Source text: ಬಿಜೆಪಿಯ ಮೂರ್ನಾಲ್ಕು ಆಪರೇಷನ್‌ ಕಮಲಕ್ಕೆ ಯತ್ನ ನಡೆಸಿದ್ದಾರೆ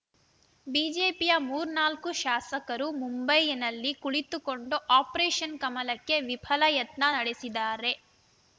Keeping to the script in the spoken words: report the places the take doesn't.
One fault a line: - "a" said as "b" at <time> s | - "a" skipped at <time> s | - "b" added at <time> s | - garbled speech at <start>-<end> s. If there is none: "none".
- "ಶಾಸಕರು ಮುಂಬೈನಲ್ಲಿ ಕುಳಿತುಕೊಂಡು" added at 2.2 s
- "ವಿಫಲ" added at 6.3 s